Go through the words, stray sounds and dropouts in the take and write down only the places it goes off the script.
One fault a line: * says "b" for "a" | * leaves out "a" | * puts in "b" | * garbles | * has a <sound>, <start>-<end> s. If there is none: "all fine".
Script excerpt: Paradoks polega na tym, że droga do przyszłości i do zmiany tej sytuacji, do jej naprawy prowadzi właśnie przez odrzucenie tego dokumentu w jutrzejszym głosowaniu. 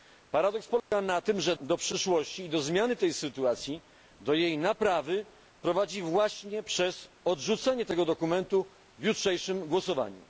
* has a dropout, 0.8-0.9 s
* leaves out "droga"